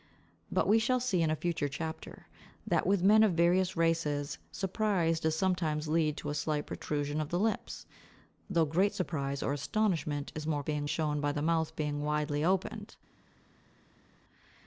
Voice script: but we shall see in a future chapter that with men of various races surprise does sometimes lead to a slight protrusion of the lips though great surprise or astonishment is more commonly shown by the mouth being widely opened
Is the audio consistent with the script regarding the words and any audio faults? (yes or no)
no